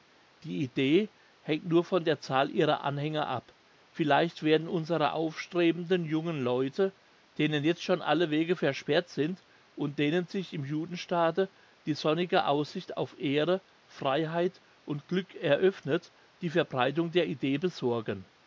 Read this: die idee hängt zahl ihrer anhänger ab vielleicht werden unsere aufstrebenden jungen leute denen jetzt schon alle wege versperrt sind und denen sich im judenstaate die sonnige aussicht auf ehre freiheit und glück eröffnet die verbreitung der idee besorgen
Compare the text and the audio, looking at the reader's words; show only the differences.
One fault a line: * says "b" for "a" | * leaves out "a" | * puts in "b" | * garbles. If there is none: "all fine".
* puts in "nur von der"